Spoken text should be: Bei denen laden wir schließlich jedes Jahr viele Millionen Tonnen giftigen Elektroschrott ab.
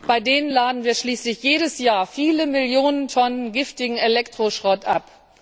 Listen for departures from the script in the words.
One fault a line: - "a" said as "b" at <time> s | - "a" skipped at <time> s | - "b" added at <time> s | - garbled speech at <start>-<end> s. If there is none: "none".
none